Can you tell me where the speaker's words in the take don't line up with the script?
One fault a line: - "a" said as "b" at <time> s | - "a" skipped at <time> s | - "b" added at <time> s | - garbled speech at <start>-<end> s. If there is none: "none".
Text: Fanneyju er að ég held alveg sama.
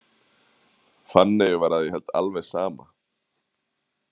- "er" said as "var" at 1.6 s